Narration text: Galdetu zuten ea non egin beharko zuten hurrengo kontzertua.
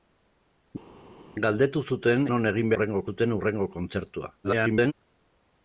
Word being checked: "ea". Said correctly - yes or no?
no